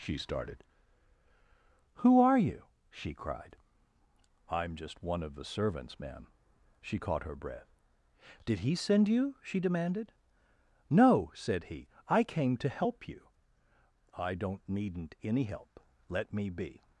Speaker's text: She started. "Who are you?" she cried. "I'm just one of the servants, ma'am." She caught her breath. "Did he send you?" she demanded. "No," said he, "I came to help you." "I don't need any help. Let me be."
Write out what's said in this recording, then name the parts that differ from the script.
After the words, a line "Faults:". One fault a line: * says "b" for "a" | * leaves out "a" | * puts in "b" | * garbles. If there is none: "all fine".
She started. "Who are you?" she cried. "I'm just one of the servants, ma'am." She caught her breath. "Did he send you?" she demanded. "No," said he, "I came to help you." "I don't needn't any help. Let me be."
Faults:
* says "needn't" for "need"